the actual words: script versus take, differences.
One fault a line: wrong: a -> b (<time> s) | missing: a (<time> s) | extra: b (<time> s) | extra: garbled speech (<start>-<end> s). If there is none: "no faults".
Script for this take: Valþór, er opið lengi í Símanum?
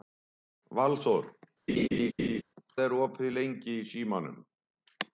no faults